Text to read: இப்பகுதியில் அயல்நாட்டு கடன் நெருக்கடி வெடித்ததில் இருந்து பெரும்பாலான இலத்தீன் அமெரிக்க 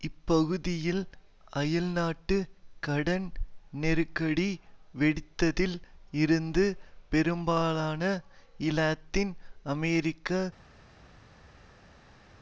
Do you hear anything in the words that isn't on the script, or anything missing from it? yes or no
no